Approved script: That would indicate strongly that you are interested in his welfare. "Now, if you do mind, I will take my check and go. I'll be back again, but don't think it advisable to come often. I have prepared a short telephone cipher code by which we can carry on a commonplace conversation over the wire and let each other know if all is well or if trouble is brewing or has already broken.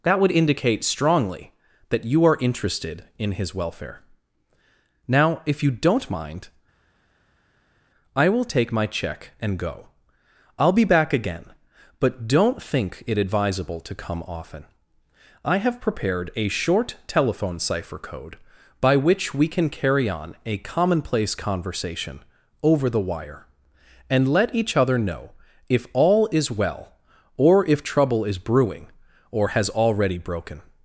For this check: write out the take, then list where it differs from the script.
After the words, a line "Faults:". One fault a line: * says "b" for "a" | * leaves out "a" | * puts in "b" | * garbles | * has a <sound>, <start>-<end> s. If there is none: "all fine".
That would indicate strongly that you are interested in his welfare. "Now, if you don't mind, I will take my check and go. I'll be back again, but don't think it advisable to come often. I have prepared a short telephone cipher code by which we can carry on a commonplace conversation over the wire and let each other know if all is well or if trouble is brewing or has already broken.
Faults:
* says "don't" for "do"